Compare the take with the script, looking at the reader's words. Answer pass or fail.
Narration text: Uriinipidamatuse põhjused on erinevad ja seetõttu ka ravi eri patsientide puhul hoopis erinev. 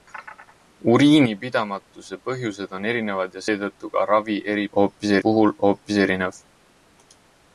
fail